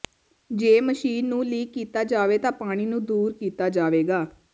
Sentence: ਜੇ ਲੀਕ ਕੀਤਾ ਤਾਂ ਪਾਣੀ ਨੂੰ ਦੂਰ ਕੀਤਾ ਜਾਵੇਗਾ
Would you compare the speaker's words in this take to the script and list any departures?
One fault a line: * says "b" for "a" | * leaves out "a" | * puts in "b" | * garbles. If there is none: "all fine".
* puts in "ਮਸ਼ੀਨ ਨੂੰ"
* puts in "ਜਾਵੇ"